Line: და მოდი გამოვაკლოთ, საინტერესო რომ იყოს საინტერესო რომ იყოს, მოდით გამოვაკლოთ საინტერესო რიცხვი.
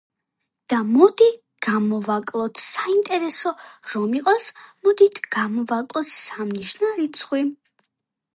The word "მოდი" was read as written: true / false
true